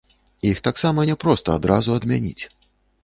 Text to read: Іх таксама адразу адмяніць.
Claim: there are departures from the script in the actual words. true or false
true